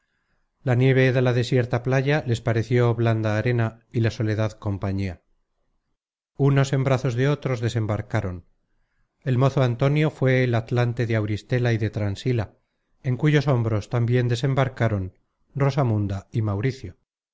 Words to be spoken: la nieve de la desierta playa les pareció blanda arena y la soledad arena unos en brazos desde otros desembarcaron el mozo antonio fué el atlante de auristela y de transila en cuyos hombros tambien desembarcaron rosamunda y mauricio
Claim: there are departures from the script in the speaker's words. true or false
true